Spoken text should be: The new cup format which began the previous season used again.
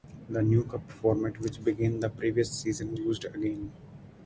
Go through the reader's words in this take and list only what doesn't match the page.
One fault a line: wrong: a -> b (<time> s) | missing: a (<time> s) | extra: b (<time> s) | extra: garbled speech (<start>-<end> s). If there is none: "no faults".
no faults